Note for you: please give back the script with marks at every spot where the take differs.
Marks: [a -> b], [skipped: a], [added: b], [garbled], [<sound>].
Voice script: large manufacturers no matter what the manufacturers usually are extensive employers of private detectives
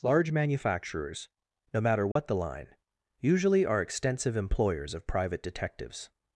large manufacturers no matter what [dropout] the [manufacturers -> line] usually are extensive employers of private detectives